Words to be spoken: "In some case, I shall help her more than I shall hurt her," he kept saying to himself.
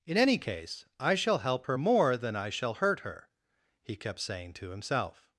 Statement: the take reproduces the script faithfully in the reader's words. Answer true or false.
false